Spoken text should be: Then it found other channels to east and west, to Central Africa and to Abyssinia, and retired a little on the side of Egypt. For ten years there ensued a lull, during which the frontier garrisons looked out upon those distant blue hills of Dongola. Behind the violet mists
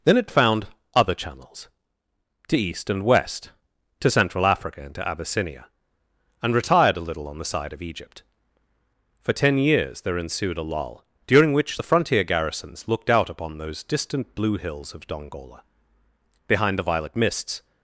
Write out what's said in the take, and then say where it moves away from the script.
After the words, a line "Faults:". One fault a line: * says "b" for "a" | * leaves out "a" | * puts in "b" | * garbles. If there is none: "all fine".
Then it found other channels to east and west, to Central Africa and to Abyssinia, and retired a little on the side of Egypt. For ten years there ensued a lull, during which the frontier garrisons looked out upon those distant blue hills of Dongola. Behind the violet mists
Faults:
all fine